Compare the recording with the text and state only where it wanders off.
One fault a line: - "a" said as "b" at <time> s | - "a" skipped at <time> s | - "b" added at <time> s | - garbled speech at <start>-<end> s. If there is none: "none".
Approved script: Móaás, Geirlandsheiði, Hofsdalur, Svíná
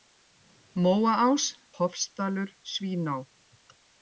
- "Geirlandsheiði" skipped at 1.4 s